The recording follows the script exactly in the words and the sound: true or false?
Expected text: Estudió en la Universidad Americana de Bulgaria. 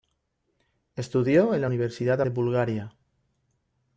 false